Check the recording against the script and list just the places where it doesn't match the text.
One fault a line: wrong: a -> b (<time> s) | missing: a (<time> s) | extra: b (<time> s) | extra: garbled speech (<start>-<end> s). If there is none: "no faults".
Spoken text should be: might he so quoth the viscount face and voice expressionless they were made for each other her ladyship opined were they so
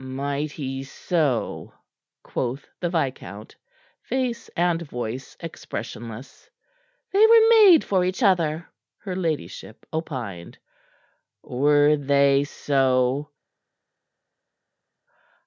no faults